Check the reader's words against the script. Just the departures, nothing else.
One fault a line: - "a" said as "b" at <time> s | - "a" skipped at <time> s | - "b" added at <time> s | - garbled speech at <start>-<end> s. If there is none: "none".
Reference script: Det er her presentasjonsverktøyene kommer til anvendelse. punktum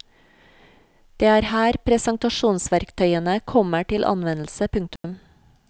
none